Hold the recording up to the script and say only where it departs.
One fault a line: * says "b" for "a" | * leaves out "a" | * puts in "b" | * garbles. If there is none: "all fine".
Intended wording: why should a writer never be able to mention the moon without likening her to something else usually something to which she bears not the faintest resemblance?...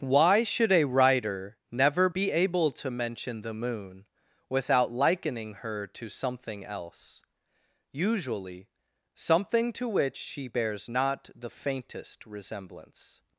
all fine